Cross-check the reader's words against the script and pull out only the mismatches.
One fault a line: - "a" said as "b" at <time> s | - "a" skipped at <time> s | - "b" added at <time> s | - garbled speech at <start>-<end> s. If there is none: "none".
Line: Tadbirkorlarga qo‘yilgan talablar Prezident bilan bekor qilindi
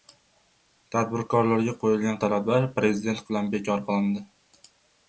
none